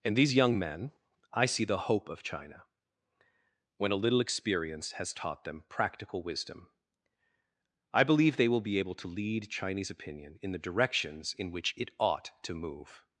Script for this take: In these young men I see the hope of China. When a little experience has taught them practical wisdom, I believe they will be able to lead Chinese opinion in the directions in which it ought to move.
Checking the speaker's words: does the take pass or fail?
pass